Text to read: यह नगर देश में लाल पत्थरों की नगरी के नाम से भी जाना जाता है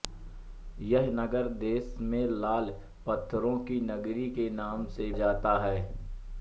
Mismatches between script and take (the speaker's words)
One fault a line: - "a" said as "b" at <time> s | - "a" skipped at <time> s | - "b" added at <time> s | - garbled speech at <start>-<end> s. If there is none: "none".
- "भी जाना" skipped at 5.1 s